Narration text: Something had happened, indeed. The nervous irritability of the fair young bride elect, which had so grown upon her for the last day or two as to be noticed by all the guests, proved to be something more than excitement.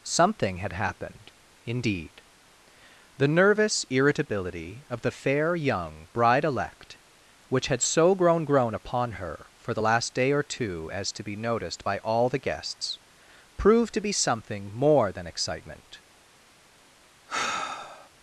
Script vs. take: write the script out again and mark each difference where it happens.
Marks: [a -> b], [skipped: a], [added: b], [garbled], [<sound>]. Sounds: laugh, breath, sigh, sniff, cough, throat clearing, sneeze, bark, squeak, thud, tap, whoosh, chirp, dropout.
Something had happened, indeed. The nervous irritability of the fair young bride elect, which had so grown [added: grown] upon her for the last day or two as to be noticed by all the guests, proved to be something more than excitement. [sigh]